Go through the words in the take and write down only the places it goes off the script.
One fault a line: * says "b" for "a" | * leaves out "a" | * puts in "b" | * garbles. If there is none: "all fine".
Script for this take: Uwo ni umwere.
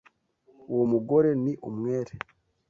* puts in "mugore"